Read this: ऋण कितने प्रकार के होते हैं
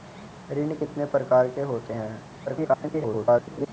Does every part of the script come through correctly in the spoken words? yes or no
no